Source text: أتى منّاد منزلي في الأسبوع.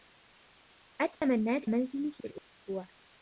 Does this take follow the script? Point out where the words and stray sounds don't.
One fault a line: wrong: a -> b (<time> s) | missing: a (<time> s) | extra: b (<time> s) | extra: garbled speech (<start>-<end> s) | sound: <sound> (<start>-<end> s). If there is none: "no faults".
sound: dropout (1.1-1.2 s)
sound: dropout (2.4-2.5 s)